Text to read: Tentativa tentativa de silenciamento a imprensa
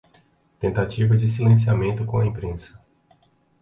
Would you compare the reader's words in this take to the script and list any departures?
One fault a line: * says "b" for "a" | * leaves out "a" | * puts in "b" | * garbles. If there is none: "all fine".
* leaves out "tentativa"
* puts in "com"